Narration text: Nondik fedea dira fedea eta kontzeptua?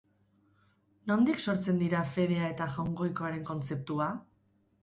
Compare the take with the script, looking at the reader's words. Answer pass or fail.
fail